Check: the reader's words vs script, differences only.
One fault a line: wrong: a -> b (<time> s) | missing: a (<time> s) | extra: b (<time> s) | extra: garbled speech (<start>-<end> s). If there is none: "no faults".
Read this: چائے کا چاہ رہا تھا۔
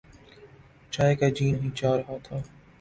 extra: جی نہیں (1.3 s)